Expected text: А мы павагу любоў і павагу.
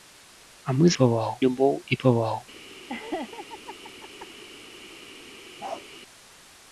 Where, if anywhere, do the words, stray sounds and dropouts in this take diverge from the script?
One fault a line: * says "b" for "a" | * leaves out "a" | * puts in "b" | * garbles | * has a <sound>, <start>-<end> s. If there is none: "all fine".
* has a laugh, 2.9-4.3 s
* has a bark, 5.6-5.8 s